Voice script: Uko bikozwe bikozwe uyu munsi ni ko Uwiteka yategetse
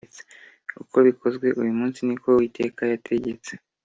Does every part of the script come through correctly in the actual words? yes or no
no